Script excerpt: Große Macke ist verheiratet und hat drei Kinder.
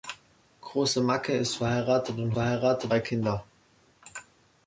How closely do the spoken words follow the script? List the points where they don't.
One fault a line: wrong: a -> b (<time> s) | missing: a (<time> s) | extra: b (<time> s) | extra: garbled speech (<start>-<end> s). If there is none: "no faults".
wrong: hat -> verheiratet (2.3 s)